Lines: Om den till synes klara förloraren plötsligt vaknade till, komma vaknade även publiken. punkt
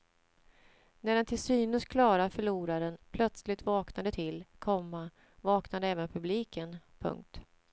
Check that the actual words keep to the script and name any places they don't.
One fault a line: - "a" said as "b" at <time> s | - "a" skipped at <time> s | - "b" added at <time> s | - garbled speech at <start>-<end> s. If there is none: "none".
- "Om" said as "När" at 1.0 s